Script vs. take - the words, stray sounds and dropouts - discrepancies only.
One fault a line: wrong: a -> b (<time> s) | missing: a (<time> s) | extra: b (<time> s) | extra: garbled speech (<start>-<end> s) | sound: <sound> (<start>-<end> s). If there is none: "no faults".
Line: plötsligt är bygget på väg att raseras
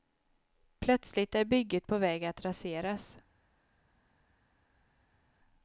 no faults